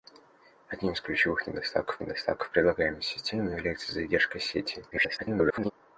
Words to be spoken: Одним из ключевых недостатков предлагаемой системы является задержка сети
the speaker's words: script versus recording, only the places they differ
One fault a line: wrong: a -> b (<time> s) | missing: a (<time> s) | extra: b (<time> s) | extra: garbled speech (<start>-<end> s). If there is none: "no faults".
extra: недостатков (2.0 s)
extra: garbled speech (4.9-5.7 s)